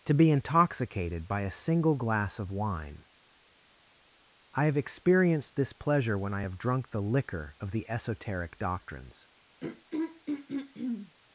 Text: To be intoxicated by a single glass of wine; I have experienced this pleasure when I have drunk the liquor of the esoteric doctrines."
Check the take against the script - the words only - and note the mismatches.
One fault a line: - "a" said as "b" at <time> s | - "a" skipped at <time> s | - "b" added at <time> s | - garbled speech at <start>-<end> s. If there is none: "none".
none